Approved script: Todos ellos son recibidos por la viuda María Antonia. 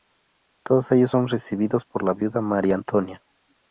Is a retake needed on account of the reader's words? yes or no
no